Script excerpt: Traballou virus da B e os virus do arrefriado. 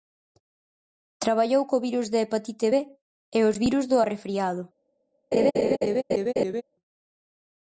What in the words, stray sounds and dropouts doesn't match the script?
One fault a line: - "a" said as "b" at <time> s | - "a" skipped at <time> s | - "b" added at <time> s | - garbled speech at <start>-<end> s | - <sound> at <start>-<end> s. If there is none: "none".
- "co" added at 1.7 s
- "hepatite" added at 2.2 s
- laugh at 5.3-6.6 s